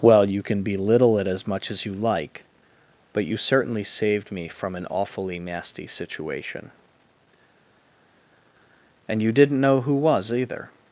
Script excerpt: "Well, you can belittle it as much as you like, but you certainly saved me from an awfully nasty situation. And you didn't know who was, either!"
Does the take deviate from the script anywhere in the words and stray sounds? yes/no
no